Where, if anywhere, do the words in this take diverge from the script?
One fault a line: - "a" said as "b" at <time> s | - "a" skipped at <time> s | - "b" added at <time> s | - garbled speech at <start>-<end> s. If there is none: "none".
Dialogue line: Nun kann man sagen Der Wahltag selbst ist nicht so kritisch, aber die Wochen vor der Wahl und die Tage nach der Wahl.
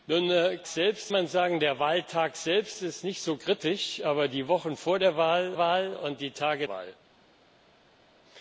- "kann" said as "selbst" at 0.7 s
- "Wahl" added at 5.6 s
- "nach der" skipped at 6.7 s